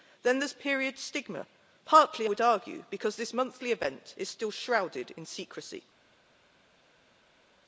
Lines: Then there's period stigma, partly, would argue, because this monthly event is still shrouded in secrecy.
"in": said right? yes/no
yes